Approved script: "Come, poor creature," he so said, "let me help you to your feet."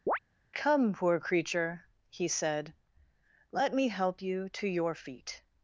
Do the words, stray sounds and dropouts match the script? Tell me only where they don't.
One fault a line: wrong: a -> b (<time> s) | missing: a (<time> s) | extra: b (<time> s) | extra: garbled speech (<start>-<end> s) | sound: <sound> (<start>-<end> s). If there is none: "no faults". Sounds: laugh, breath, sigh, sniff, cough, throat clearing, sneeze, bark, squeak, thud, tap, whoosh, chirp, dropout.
sound: chirp (0.1-0.2 s)
missing: so (2.3 s)